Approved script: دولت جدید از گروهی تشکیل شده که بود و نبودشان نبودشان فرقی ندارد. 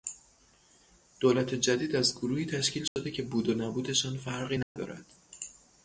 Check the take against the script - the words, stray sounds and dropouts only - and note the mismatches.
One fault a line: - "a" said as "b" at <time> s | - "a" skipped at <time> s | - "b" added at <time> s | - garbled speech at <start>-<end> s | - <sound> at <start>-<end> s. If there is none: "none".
- dropout at 2.9-3.0 s
- "نبودشان" skipped at 4.2 s
- dropout at 4.6-4.8 s